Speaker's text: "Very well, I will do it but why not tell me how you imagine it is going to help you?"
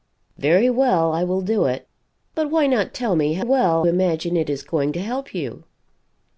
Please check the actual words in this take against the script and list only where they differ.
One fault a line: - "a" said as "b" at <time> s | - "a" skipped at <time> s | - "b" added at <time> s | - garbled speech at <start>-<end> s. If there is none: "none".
- "you" said as "well" at 3.4 s